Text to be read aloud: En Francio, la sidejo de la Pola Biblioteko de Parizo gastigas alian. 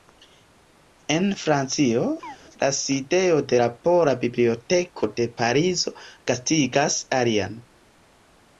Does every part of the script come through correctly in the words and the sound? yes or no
no